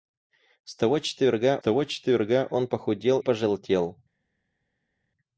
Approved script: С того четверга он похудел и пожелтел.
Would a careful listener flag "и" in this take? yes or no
yes